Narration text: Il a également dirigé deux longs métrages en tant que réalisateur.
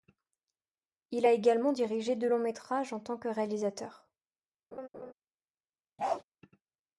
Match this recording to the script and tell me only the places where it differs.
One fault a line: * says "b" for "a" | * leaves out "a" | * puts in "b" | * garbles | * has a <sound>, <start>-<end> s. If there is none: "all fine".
* has a laugh, 4.7-5.1 s
* has a bark, 6.0-6.2 s